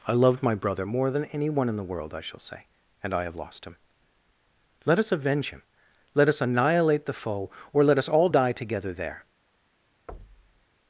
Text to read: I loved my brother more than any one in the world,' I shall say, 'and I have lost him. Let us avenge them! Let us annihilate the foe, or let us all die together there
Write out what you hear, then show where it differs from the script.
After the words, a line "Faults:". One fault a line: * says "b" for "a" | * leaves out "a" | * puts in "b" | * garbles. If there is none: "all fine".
I loved my brother more than any one in the world,' I shall say, 'and I have lost him. Let us avenge him! Let us annihilate the foe, or let us all die together there
Faults:
* says "him" for "them"